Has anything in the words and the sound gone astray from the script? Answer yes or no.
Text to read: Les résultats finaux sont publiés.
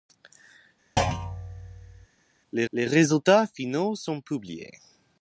yes